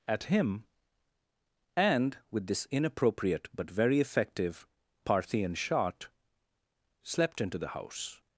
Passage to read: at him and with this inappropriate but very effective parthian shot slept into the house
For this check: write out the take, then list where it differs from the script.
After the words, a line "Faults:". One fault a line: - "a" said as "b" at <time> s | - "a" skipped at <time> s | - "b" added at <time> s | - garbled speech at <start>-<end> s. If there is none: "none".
at him and with this inappropriate but very effective parthian shot slept into the house
Faults:
none